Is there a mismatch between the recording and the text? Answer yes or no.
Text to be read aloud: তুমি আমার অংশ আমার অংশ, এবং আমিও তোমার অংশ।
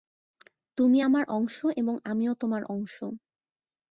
yes